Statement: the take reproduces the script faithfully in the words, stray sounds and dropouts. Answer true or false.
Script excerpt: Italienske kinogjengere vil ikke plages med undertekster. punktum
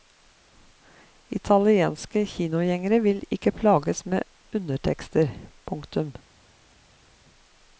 true